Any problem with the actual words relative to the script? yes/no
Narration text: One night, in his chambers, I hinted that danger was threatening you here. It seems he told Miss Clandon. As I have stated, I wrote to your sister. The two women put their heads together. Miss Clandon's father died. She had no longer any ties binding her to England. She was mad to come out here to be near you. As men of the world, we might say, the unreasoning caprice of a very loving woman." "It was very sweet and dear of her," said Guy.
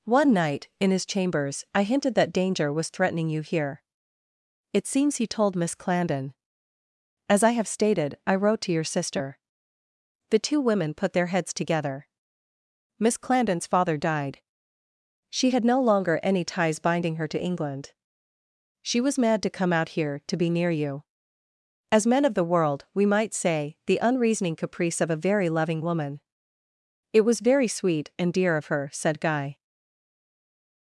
no